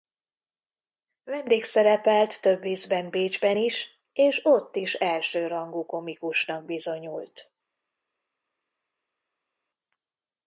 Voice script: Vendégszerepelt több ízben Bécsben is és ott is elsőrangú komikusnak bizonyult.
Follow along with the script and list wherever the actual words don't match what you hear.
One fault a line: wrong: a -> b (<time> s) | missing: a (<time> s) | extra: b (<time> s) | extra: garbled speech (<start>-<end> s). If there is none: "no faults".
no faults